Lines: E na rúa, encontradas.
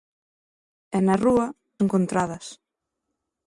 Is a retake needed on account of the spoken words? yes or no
no